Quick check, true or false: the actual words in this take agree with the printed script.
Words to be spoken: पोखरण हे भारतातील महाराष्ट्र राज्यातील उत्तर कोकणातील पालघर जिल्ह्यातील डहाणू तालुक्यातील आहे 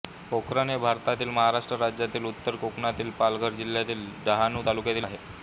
true